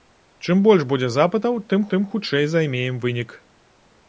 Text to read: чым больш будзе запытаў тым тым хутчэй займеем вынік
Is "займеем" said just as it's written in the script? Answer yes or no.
yes